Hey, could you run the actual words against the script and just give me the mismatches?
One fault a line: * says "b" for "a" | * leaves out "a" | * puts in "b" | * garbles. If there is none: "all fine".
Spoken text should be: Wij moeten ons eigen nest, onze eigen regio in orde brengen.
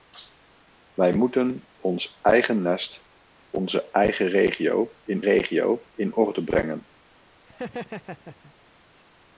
* puts in "regio in"